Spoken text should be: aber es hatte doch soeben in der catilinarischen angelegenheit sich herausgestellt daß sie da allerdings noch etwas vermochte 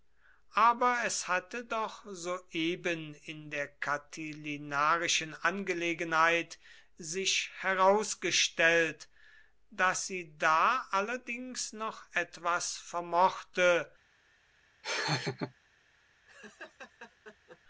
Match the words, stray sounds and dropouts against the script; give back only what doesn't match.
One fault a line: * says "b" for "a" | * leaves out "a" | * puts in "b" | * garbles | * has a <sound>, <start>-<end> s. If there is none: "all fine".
* has a laugh, 14.8-15.5 s
* has a laugh, 16.3-17.6 s